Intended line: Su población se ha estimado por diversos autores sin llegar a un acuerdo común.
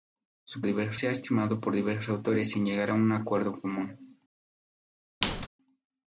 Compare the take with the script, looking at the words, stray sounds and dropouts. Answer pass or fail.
fail